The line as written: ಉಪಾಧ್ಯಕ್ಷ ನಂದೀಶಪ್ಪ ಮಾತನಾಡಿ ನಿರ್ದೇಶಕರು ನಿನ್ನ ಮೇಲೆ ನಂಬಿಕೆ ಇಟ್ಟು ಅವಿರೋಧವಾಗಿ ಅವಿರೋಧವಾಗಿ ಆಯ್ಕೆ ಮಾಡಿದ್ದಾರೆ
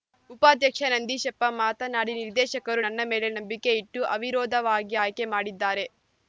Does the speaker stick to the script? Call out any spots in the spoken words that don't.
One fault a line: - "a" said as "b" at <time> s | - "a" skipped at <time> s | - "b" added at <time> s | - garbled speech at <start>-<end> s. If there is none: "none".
- "ನಿನ್ನ" said as "ನನ್ನ" at 2.8 s
- "ಅವಿರೋಧವಾಗಿ" skipped at 5.0 s